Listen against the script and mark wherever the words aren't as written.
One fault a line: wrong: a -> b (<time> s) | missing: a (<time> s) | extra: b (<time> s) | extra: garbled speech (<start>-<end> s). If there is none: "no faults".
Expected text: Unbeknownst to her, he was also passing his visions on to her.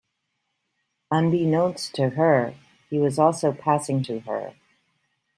missing: his visions on (4.0 s)